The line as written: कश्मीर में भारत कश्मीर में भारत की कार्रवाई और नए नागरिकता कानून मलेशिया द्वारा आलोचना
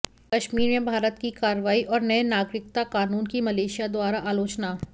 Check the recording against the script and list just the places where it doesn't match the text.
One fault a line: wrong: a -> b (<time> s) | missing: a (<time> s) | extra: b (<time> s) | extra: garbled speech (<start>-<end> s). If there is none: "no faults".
missing: कश्मीर में भारत (1.2 s)
extra: की (3.3 s)